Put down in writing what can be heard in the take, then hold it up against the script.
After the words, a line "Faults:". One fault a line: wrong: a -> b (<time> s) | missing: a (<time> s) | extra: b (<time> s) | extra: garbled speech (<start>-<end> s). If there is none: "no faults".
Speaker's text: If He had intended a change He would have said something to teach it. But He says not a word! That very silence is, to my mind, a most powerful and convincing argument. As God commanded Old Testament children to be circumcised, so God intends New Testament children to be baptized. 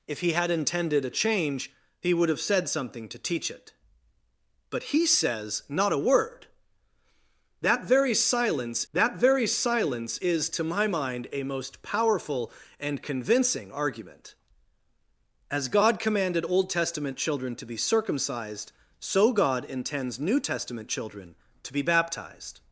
If He had intended a change He would have said something to teach it. But He says not a word! That very silence that very silence is, to my mind, a most powerful and convincing argument. As God commanded Old Testament children to be circumcised, so God intends New Testament children to be baptized.
Faults:
extra: that very silence (8.9 s)